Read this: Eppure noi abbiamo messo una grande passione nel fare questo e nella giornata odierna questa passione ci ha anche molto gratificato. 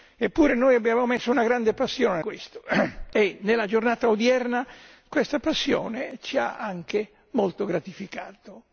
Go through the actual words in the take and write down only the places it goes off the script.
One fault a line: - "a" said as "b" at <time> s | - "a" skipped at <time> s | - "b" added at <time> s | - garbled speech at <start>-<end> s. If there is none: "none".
- "nel fare" skipped at 2.2 s